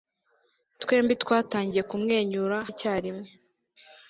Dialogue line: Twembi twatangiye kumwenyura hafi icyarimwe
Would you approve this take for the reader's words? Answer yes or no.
no